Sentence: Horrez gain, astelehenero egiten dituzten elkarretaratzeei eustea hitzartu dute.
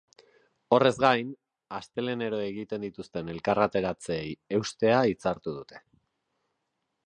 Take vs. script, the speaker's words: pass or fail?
pass